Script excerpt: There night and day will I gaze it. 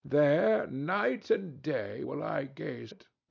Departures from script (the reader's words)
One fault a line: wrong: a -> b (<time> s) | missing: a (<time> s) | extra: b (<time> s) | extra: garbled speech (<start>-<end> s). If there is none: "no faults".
no faults